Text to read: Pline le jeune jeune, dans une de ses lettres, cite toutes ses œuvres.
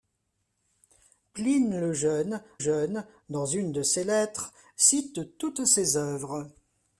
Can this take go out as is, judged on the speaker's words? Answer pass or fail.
pass